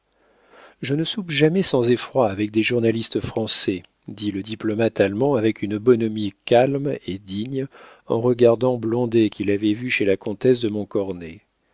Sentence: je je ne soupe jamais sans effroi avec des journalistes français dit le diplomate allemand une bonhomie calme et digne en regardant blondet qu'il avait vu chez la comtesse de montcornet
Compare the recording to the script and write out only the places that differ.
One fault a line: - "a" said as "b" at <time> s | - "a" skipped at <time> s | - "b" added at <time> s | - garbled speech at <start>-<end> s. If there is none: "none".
- "je" skipped at 0.9 s
- "avec" added at 5.3 s